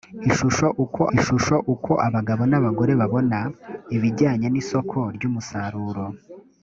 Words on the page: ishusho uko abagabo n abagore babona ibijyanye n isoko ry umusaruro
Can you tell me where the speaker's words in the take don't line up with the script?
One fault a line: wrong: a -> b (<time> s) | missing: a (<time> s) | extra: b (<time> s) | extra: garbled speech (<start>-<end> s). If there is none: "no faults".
extra: ishusho uko (1.2 s)